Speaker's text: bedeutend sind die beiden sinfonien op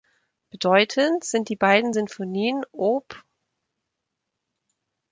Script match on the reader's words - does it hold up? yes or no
yes